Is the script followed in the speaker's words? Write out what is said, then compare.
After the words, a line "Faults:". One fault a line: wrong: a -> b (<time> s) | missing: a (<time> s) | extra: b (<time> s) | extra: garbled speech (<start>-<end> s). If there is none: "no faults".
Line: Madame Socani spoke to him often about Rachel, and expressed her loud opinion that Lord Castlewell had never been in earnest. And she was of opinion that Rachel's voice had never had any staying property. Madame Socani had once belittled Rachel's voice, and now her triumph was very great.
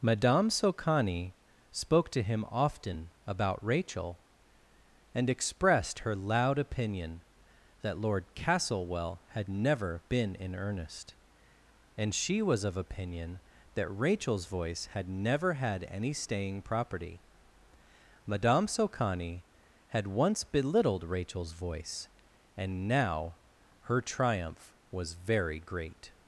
Madame Socani spoke to him often about Rachel, and expressed her loud opinion that Lord Castlewell had never been in earnest. And she was of opinion that Rachel's voice had never had any staying property. Madame Socani had once belittled Rachel's voice, and now her triumph was very great.
Faults:
no faults